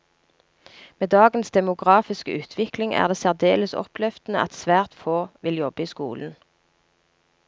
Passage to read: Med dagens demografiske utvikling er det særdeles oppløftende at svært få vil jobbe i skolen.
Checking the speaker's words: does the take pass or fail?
pass